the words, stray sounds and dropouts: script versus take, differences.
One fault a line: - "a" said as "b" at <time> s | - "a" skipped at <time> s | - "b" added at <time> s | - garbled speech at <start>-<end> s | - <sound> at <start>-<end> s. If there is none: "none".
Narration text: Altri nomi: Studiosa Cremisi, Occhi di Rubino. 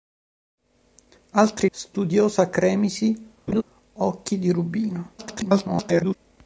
- "nomi" skipped at 1.7 s
- laugh at 3.5-3.6 s
- garbled speech at 5.2-6.2 s